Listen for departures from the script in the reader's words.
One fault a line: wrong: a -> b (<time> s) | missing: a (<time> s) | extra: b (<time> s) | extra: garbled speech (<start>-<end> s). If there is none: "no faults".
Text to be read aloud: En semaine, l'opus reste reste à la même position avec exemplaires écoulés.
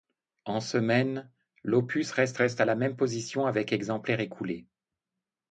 no faults